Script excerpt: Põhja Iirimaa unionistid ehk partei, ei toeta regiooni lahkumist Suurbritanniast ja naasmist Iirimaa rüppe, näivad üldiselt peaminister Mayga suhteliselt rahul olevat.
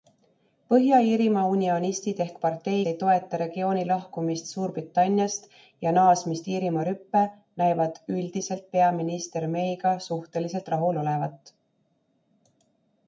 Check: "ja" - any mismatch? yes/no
no